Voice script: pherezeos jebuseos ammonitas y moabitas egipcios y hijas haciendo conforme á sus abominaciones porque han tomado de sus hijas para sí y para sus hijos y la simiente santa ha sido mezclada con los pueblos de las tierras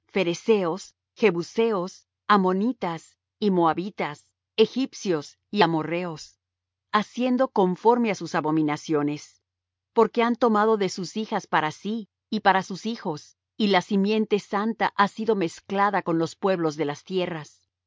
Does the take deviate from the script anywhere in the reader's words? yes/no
yes